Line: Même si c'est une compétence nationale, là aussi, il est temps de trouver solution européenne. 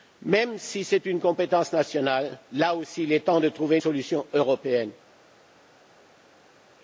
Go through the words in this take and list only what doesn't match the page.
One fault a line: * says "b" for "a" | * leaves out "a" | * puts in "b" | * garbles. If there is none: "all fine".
all fine